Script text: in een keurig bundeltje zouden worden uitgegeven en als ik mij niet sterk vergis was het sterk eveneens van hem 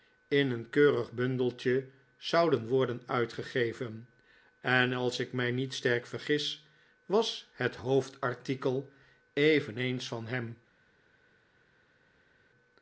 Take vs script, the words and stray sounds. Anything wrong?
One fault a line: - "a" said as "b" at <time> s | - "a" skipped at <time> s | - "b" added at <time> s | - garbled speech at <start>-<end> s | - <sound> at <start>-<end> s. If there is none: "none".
- "sterk" said as "hoofdartikel" at 7.8 s